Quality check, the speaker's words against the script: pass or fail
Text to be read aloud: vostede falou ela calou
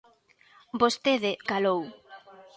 fail